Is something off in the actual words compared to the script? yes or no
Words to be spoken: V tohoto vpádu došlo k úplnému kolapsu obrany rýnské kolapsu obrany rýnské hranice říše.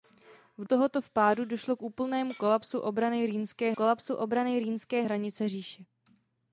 no